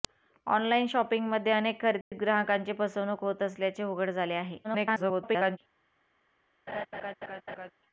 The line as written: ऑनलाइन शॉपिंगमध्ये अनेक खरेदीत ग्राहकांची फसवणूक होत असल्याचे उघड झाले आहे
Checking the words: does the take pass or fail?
fail